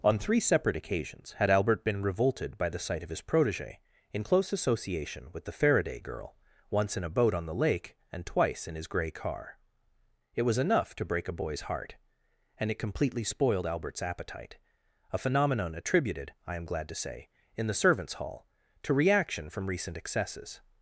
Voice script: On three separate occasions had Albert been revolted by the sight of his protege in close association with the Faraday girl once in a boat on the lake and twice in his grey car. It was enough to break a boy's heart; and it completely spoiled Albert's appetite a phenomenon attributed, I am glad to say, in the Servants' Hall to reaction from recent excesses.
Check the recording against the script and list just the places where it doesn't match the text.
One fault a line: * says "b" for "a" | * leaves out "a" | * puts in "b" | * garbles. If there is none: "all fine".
all fine